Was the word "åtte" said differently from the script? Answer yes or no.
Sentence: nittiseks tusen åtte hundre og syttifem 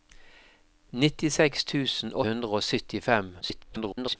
yes